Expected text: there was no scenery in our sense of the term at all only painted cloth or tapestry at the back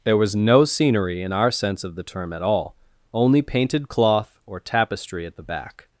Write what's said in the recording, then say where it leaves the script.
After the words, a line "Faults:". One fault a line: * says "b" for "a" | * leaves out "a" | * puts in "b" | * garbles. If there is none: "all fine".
there was no scenery in our sense of the term at all only painted cloth or tapestry at the back
Faults:
all fine